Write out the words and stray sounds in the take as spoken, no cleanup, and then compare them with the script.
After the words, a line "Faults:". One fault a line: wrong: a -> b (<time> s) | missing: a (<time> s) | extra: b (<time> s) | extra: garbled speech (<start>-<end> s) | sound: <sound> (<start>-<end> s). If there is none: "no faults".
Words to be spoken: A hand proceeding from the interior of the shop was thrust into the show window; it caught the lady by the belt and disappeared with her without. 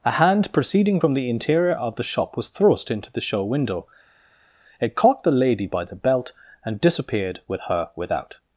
A hand proceeding from the interior of the shop was thrust into the show window; it caught the lady by the belt and disappeared with her without.
Faults:
no faults